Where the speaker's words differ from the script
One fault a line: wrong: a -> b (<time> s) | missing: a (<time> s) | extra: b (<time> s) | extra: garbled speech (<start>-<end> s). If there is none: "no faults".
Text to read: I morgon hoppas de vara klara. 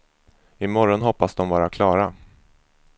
no faults